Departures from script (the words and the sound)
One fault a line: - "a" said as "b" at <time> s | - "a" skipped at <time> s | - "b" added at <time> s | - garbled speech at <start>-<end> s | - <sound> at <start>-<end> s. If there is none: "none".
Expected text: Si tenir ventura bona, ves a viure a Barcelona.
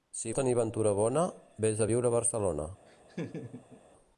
- laugh at 2.9-3.8 s